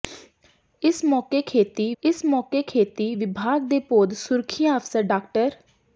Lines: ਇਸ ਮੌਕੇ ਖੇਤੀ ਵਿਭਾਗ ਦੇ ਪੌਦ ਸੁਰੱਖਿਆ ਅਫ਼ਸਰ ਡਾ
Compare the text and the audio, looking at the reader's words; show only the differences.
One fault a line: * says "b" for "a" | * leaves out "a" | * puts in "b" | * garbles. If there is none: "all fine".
* puts in "ਇਸ ਮੌਕੇ ਖੇਤੀ"